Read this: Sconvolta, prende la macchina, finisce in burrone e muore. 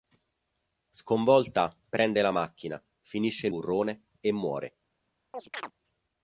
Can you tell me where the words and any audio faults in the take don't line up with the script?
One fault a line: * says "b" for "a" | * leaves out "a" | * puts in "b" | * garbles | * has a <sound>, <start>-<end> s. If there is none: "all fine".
* has a chirp, 5.3-5.7 s